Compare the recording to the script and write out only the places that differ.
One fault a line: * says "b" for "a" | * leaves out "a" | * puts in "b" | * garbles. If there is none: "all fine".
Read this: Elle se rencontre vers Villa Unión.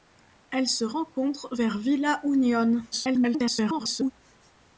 * garbles